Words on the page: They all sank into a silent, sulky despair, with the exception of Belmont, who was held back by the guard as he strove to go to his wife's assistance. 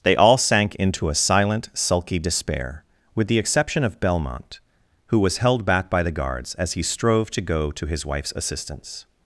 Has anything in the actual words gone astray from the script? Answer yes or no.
yes